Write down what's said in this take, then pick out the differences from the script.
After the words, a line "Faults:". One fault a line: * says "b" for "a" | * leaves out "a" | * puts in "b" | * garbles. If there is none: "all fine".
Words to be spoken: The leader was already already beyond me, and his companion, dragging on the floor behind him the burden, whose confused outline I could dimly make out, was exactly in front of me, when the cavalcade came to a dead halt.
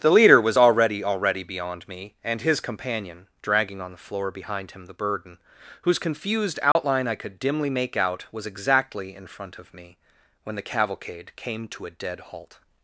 The leader was already already beyond me, and his companion, dragging on the floor behind him the burden, whose confused outline I could dimly make out, was exactly in front of me, when the cavalcade came to a dead halt.
Faults:
all fine